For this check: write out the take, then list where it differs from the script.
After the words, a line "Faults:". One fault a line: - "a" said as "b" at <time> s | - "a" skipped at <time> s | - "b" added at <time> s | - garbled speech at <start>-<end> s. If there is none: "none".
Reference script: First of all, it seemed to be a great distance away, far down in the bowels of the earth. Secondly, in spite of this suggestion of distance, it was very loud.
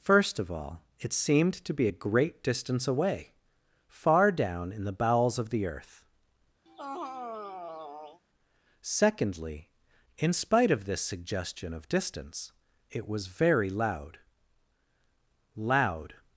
First of all, it seemed to be a great distance away, far down in the bowels of the earth. Secondly, in spite of this suggestion of distance, it was very loud loud.
Faults:
- "loud" added at 15.5 s